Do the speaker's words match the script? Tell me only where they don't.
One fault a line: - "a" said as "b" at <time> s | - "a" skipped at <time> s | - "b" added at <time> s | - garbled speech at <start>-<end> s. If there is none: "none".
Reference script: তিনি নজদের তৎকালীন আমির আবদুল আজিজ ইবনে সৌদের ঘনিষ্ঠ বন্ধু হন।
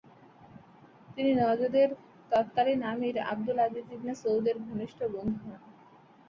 none